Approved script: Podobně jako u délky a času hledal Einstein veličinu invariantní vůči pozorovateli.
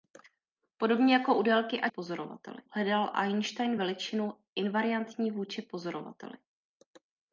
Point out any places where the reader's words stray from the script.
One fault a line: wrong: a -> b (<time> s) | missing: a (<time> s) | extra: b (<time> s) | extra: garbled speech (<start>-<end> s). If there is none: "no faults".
wrong: času -> pozorovateli (1.9 s)